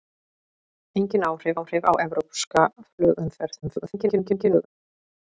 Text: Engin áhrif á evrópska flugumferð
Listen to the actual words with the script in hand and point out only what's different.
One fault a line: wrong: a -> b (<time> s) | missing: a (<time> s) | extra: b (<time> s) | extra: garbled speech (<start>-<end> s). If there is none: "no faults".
extra: áhrif (1.5 s)
extra: garbled speech (3.6-4.7 s)